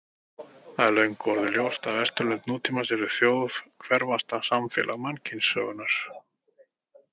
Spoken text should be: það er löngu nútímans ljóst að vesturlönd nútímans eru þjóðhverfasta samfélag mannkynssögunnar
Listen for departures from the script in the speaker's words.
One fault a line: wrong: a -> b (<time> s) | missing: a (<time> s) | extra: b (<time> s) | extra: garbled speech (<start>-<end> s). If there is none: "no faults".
wrong: nútímans -> orðið (1.3 s)